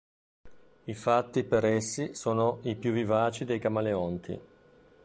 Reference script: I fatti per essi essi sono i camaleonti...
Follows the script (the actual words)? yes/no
no